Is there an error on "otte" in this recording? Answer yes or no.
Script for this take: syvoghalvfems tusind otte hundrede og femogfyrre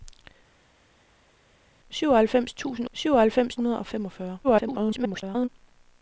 yes